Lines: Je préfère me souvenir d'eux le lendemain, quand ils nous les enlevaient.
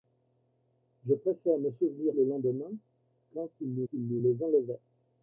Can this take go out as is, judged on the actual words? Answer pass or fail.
fail